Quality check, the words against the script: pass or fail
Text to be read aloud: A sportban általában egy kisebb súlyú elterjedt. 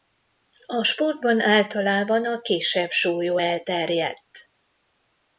fail